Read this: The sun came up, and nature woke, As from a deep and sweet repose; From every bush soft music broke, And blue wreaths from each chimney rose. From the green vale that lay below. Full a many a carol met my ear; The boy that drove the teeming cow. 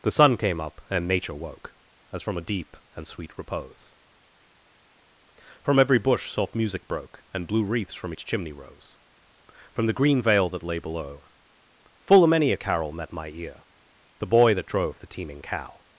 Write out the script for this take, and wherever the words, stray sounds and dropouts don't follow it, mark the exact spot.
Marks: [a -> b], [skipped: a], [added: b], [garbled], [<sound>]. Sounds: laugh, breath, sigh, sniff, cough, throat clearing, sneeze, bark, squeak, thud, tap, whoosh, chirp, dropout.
The sun came up, and nature woke, As from a deep and sweet repose; From every bush soft music broke, And blue wreaths from each chimney rose. From the green vale that lay below. Full a many a carol met my ear; The boy that drove the teeming cow.